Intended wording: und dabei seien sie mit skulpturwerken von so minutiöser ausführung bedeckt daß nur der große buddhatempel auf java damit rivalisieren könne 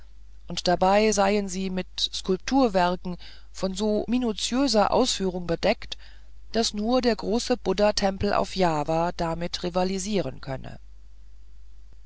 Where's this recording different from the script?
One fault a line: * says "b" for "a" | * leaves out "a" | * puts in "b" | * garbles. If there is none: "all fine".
all fine